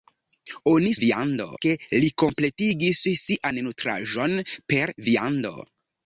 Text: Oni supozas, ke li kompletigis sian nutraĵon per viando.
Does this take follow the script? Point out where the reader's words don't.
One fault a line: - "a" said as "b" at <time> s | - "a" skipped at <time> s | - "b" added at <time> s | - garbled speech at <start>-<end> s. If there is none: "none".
- "supozas" said as "viando" at 1.1 s